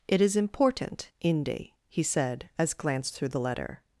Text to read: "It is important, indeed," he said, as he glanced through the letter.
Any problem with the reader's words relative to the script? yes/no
yes